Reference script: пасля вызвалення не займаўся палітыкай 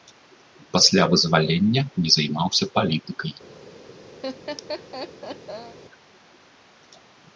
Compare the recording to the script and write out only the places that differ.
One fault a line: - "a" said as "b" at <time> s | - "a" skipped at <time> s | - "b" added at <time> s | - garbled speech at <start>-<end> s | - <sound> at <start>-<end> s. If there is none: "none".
- laugh at 4.2-5.8 s